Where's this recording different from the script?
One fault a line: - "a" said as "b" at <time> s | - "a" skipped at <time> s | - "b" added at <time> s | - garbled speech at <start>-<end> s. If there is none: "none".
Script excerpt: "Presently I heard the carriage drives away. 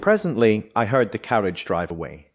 - "drives" said as "drive" at 1.6 s